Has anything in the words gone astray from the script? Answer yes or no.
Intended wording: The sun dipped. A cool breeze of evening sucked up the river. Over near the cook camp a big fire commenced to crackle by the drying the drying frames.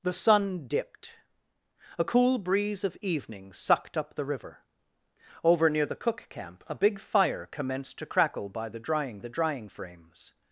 no